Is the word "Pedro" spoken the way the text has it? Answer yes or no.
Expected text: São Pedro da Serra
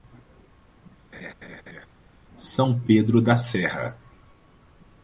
yes